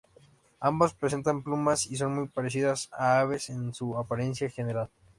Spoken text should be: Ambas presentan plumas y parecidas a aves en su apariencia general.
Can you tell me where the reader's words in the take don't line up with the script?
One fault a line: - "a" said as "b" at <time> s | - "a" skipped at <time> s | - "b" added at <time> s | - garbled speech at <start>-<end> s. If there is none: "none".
- "son muy" added at 2.0 s